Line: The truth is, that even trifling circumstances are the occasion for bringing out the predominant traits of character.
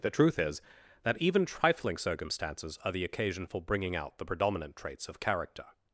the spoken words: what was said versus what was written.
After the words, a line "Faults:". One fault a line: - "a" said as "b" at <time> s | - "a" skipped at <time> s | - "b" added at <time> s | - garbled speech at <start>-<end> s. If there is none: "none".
The truth is, that even trifling circumstances are the occasion for bringing out the predominant traits of character.
Faults:
none